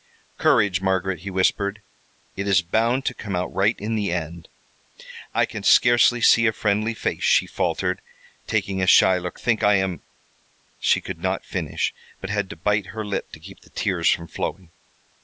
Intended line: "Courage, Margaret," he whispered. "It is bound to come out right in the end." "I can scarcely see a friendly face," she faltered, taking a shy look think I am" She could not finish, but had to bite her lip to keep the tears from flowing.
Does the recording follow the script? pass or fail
pass